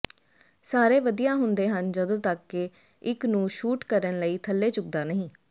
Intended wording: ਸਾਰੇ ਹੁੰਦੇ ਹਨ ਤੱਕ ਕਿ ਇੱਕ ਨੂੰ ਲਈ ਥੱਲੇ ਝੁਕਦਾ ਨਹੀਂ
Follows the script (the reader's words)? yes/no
no